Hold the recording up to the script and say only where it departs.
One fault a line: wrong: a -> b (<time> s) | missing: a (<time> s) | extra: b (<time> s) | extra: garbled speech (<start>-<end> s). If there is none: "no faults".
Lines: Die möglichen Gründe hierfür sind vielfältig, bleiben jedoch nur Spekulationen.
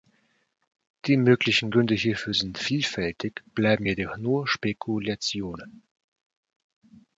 no faults